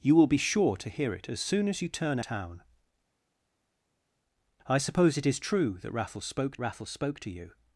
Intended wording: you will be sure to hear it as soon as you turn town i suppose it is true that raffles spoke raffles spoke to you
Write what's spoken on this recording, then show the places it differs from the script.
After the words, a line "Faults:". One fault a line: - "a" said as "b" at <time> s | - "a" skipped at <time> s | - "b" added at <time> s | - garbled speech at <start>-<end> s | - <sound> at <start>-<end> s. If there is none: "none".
you will be sure to hear it as soon as you turn town i suppose it is true that raffles spoke raffles spoke to you
Faults:
none